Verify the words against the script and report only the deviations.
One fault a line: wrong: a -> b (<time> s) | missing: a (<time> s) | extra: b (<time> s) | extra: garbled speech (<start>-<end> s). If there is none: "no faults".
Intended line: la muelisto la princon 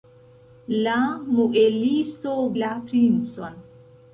no faults